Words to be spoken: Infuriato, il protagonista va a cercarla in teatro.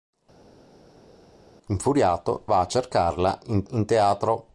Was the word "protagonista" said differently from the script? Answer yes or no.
yes